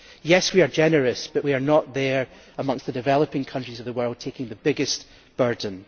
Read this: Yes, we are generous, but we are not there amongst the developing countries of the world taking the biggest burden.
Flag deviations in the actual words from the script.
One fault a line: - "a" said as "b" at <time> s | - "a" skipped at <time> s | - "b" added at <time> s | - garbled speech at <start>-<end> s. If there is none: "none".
none